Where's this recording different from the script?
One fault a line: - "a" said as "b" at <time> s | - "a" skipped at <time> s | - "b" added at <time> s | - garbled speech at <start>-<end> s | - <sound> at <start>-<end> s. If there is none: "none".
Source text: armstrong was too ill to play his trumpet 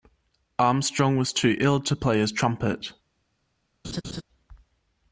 - laugh at 3.8-4.2 s